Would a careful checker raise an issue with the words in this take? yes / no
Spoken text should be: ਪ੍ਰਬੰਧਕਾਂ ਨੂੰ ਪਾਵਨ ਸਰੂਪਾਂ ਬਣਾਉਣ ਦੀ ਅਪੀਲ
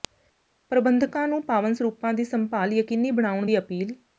yes